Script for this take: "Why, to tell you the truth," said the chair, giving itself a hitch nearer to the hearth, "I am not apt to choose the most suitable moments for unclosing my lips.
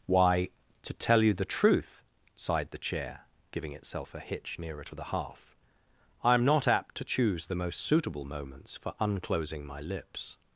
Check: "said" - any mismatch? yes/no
yes